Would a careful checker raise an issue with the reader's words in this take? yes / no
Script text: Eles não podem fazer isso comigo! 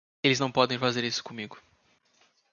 no